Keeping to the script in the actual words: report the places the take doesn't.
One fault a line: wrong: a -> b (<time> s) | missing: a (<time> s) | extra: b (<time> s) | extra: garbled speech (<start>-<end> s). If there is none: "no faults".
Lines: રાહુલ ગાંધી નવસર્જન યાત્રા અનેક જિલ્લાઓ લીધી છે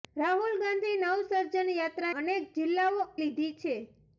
no faults